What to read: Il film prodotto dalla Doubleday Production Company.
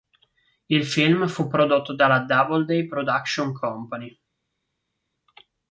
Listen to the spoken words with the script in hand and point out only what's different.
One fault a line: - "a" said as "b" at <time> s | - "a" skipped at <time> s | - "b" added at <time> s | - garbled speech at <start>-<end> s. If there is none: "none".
- "fu" added at 1.3 s